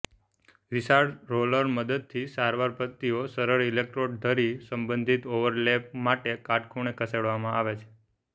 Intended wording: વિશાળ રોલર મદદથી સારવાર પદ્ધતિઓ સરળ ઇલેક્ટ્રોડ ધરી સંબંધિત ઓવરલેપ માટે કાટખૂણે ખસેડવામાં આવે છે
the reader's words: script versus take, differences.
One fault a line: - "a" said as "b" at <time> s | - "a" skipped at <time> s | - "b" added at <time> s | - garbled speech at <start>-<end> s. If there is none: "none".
none